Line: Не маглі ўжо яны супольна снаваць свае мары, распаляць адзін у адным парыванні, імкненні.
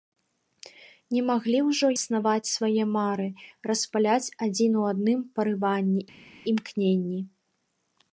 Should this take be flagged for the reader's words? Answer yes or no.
yes